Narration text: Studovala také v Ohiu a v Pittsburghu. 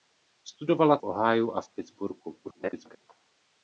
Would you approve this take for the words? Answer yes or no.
no